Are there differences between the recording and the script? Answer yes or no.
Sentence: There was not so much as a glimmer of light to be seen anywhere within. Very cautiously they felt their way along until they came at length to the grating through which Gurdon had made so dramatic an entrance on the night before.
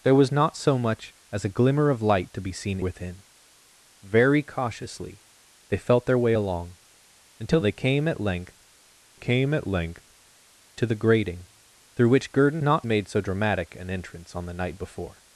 yes